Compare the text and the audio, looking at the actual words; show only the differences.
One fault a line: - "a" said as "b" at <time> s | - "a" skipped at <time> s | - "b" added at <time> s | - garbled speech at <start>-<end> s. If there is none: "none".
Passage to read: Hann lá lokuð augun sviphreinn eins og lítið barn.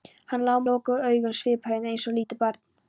none